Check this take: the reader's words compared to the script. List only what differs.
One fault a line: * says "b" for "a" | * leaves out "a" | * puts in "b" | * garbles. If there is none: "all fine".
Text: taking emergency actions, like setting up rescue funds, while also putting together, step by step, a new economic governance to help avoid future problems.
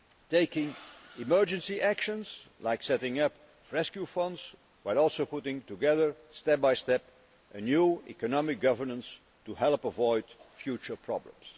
all fine